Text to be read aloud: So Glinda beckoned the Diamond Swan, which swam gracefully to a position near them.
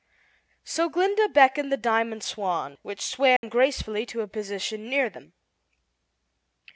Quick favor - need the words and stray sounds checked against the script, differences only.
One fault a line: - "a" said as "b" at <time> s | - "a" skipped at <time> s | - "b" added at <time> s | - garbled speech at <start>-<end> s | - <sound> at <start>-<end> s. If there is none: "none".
- dropout at 3.4-3.4 s